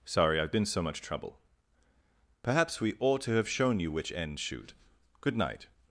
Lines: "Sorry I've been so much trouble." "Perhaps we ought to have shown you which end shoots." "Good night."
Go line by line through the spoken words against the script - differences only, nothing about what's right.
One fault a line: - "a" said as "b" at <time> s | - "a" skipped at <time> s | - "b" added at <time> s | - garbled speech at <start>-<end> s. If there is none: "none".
- "shoots" said as "shoot" at 4.4 s